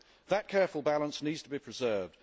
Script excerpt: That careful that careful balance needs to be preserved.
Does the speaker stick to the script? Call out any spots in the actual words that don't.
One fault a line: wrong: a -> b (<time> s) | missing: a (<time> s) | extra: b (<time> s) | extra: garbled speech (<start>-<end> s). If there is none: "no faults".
missing: that careful (0.8 s)